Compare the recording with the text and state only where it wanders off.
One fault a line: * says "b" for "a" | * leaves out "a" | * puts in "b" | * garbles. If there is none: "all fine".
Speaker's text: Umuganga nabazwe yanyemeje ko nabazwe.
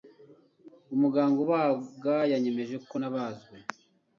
* says "ubaga" for "nabazwe"